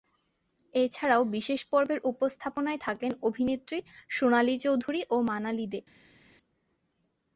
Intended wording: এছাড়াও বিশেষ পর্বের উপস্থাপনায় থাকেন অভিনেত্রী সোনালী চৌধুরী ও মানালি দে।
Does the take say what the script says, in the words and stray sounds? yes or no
yes